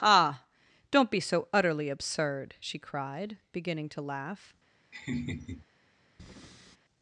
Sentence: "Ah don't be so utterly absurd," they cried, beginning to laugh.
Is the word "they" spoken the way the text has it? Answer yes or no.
no